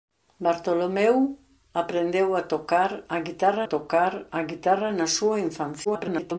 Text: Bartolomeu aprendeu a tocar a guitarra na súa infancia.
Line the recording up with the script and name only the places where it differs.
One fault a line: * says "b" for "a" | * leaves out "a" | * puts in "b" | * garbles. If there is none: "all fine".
* puts in "tocar a guitarra"
* garbles